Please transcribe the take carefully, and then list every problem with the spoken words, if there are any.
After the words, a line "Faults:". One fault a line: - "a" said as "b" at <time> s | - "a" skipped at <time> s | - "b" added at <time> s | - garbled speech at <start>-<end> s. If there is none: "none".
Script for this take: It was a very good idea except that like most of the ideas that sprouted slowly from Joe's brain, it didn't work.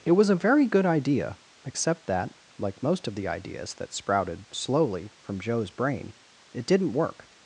It was a very good idea except that like most of the ideas that sprouted slowly from Joe's brain, it didn't work.
Faults:
none